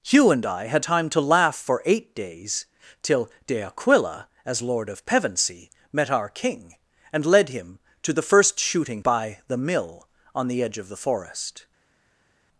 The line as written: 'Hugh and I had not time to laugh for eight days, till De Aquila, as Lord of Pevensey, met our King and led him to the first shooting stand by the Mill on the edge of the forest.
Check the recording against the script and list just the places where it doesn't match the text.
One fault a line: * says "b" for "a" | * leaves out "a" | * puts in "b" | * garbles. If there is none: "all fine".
* leaves out "not"
* leaves out "stand"